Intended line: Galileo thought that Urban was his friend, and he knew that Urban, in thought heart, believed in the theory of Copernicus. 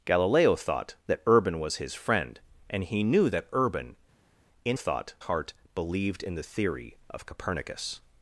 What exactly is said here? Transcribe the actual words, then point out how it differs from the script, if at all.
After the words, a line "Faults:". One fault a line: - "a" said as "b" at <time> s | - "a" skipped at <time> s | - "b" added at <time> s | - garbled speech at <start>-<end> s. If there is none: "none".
Galileo thought that Urban was his friend, and he knew that Urban, in thought heart, believed in the theory of Copernicus.
Faults:
none